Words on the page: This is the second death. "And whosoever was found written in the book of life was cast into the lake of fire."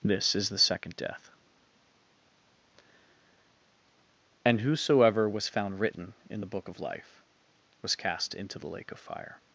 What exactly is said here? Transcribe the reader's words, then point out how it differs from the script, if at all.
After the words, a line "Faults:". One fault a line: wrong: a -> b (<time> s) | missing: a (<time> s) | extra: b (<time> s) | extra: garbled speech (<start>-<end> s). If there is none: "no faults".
This is the second death. "And whosoever was found written in the book of life was cast into the lake of fire."
Faults:
no faults